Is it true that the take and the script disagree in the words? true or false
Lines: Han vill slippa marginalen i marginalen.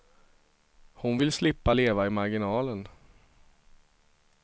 true